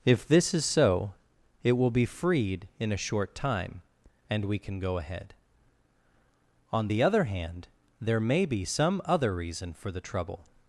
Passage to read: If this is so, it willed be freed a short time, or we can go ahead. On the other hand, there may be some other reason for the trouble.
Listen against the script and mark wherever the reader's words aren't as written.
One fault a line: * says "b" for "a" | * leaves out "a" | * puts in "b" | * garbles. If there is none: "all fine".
* says "will" for "willed"
* puts in "in"
* says "and" for "or"